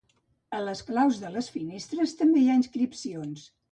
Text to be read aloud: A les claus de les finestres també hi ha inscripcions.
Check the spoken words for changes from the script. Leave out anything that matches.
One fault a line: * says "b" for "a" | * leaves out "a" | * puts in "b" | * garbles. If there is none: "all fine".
all fine